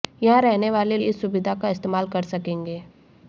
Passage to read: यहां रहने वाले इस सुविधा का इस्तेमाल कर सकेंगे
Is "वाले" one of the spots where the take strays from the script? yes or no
no